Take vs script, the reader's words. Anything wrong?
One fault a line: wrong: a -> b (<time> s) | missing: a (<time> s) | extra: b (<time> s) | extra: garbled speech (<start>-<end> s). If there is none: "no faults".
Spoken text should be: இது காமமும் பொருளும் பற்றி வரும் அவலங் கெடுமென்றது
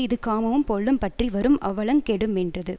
no faults